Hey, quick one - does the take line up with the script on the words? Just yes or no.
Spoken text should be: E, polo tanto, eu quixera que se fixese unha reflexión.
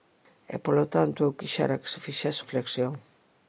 no